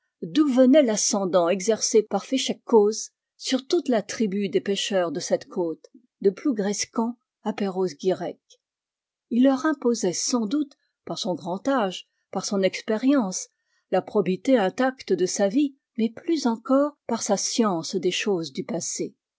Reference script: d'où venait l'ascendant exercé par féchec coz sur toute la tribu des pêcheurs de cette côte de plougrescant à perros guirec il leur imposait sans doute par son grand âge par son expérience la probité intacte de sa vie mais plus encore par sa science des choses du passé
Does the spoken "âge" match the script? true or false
true